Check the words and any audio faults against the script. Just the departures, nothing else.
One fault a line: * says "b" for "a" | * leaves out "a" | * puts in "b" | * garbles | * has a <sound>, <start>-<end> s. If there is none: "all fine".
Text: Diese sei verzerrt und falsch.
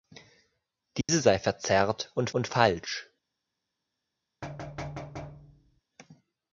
* has a dropout, 1.0-1.1 s
* puts in "und"
* has a thud, 4.4-5.8 s